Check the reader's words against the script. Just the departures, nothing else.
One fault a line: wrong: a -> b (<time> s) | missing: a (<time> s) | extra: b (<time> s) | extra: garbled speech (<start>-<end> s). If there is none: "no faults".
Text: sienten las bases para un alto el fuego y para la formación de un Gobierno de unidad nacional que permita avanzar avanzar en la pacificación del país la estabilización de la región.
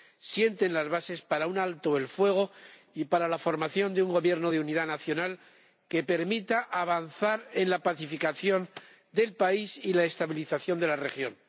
missing: avanzar (7.5 s)
extra: y (9.8 s)